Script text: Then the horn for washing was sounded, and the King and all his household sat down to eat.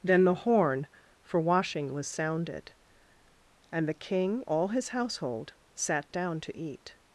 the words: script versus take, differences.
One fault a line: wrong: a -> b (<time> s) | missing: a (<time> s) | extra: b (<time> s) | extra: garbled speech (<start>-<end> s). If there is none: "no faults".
missing: and (4.4 s)